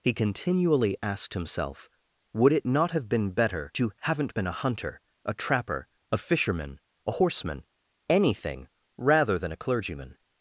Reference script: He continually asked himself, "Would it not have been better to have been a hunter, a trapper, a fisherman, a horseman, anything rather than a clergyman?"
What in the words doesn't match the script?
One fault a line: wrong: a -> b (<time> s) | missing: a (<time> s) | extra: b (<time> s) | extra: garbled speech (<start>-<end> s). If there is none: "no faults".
wrong: have -> haven't (4.0 s)